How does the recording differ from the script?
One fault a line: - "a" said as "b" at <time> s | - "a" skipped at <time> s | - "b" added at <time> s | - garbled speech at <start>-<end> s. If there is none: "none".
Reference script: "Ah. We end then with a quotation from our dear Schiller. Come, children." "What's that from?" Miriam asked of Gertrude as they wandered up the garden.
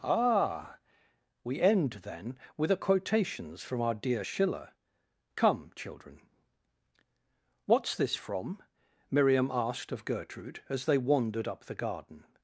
- "quotation" said as "quotations" at 2.8 s
- "that" said as "this" at 8.0 s